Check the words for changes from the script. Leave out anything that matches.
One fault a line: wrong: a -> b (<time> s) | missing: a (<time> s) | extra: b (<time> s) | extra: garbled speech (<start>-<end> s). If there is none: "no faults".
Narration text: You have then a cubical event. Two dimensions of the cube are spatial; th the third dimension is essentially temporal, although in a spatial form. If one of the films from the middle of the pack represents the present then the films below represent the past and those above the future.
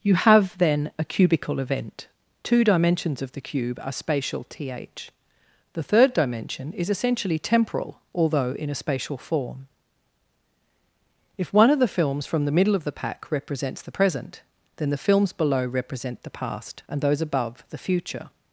no faults